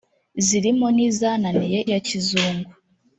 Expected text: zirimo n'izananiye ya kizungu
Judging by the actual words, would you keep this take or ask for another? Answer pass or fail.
pass